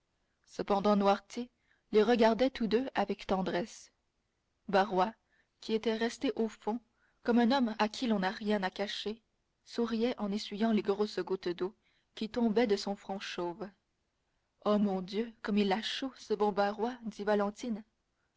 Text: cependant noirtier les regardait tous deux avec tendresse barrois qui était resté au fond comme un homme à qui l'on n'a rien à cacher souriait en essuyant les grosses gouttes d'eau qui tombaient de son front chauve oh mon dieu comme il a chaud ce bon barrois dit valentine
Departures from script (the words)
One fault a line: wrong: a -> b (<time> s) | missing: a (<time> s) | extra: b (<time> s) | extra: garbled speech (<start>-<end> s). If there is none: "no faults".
no faults